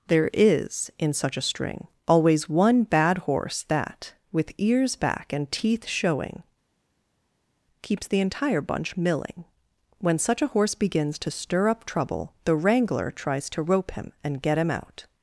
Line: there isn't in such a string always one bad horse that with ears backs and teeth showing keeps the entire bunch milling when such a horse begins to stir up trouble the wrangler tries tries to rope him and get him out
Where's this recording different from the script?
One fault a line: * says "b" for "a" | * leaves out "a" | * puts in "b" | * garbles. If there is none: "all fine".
* says "is" for "isn't"
* says "back" for "backs"
* leaves out "tries"